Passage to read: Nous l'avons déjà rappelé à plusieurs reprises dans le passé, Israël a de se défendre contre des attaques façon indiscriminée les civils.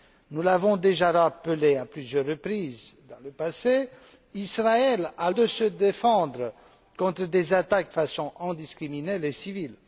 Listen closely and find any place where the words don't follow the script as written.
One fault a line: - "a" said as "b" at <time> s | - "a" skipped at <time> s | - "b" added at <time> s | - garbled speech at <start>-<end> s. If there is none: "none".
none